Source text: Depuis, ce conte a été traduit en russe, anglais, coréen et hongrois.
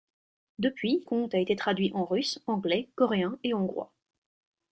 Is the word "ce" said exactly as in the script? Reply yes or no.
no